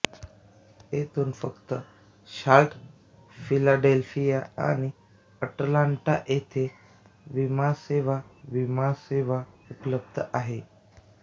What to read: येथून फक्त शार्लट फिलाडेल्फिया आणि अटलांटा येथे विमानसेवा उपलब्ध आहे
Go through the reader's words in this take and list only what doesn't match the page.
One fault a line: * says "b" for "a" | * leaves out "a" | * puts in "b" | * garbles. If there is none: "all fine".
* puts in "विमानसेवा"